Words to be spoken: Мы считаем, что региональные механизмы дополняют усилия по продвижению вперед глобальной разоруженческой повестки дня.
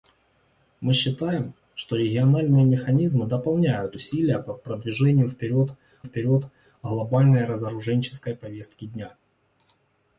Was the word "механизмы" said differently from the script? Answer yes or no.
no